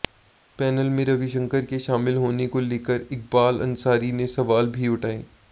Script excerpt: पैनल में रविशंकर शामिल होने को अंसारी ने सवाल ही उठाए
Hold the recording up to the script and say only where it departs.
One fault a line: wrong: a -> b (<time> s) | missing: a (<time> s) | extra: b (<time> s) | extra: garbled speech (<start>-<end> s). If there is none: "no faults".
extra: के (1.6 s)
extra: लेकर इकबाल (2.6 s)
wrong: ही -> भी (4.7 s)